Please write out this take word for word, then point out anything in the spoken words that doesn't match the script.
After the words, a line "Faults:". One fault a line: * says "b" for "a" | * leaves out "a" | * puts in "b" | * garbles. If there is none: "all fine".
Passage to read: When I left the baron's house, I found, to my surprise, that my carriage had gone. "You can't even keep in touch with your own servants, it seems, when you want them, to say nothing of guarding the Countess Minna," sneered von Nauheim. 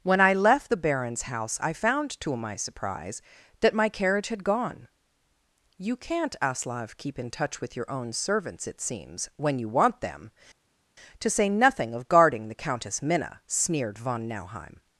When I left the baron's house, I found, to my surprise, that my carriage had gone. "You can't aslav keep in touch with your own servants, it seems, when you want them, to say nothing of guarding the Countess Minna," sneered von Nauheim.
Faults:
* says "aslav" for "even"